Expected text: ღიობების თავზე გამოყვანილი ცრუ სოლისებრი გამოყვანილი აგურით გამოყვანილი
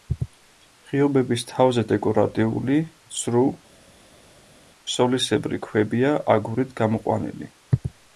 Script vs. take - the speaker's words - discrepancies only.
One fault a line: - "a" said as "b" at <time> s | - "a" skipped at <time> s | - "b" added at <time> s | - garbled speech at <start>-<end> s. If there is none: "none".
- "გამოყვანილი" said as "დეკორატიული" at 1.9 s
- "გამოყვანილი" said as "ქვებია" at 5.7 s